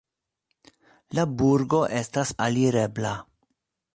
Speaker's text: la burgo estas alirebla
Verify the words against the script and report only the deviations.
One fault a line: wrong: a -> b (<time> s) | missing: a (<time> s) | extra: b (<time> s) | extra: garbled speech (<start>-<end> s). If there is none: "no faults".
no faults